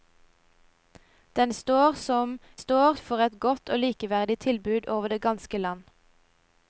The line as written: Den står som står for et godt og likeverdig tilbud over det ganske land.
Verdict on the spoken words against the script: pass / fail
pass